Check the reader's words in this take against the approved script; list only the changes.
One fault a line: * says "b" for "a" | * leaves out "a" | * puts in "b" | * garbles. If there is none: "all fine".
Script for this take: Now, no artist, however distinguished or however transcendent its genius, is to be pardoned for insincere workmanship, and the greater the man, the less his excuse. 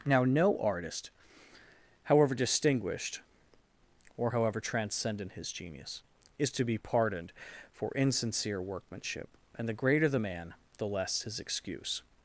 * says "his" for "its"